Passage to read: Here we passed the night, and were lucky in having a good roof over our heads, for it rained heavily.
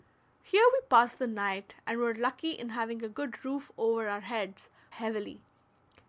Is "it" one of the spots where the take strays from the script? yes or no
yes